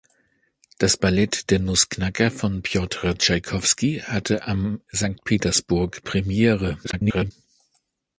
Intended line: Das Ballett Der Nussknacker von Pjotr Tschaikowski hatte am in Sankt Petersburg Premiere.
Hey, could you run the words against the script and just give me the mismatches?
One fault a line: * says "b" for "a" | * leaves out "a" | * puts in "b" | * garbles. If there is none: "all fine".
* leaves out "in"
* garbles